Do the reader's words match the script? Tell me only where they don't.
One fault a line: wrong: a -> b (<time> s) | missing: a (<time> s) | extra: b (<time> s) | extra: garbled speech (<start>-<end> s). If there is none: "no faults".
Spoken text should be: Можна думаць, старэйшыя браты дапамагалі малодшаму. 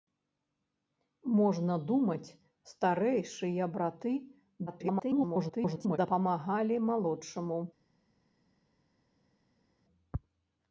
extra: garbled speech (4.7-6.0 s)